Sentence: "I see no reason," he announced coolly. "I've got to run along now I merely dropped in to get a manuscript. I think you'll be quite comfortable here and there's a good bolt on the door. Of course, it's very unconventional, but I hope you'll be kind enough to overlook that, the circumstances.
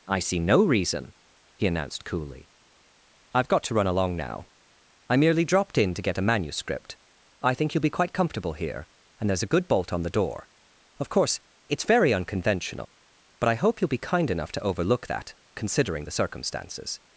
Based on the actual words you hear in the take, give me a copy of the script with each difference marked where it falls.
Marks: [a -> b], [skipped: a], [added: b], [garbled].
"I see no reason," he announced coolly. "I've got to run along now I merely dropped in to get a manuscript. I think you'll be quite comfortable here and there's a good bolt on the door. Of course, it's very unconventional, but I hope you'll be kind enough to overlook that, [added: considering] the circumstances.